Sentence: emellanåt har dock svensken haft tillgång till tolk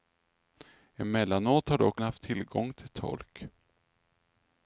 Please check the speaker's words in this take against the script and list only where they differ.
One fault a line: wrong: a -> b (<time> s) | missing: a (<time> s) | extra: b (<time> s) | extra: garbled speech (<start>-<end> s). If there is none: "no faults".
missing: svensken (2.0 s)